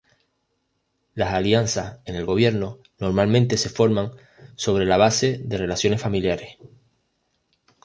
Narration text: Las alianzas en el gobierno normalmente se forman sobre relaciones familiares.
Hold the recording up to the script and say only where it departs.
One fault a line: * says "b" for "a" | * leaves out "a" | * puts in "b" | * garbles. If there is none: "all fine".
* puts in "la base de"